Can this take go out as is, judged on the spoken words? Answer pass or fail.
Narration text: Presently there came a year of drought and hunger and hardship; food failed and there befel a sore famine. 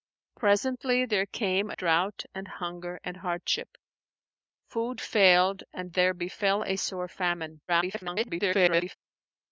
fail